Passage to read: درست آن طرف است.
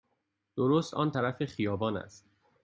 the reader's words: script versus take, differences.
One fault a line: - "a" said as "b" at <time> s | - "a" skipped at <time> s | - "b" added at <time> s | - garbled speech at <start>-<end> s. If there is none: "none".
- "خیابان" added at 1.5 s